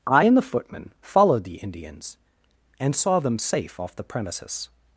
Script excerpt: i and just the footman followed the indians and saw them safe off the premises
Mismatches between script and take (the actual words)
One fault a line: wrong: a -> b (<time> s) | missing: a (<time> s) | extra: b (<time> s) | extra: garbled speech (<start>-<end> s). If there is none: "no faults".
missing: just (0.4 s)